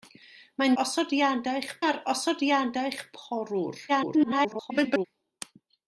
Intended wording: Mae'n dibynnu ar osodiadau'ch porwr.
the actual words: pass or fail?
fail